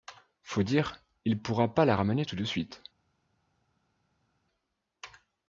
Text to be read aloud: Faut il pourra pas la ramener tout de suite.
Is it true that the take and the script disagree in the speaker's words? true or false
true